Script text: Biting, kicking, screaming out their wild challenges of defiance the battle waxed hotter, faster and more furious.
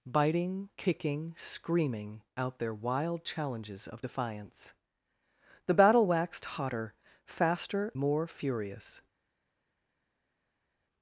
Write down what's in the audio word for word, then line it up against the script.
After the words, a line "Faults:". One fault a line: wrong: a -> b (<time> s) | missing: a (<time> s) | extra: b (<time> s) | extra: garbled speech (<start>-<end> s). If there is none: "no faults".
Biting, kicking, screaming out their wild challenges of defiance the battle waxed hotter, faster more furious.
Faults:
missing: and (7.9 s)